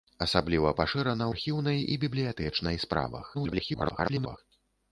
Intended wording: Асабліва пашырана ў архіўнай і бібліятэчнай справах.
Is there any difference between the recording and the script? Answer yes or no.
yes